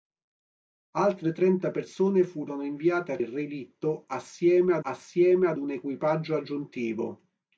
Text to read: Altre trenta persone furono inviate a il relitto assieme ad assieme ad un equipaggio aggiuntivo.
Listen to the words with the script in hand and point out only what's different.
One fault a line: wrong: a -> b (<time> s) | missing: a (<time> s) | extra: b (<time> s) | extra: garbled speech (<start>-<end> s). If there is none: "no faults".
no faults